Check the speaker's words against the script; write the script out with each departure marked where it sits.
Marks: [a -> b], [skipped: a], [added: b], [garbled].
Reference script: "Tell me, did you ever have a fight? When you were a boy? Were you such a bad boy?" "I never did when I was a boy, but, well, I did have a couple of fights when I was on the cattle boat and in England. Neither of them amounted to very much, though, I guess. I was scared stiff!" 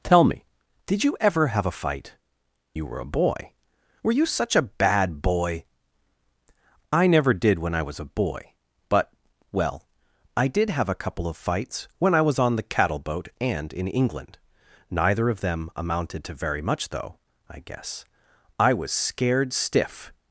"Tell me, did you ever have a fight? [skipped: When] you were a boy? Were you such a bad boy?" "I never did when I was a boy, but, well, I did have a couple of fights when I was on the cattle boat and in England. Neither of them amounted to very much, though, I guess. I was scared stiff!"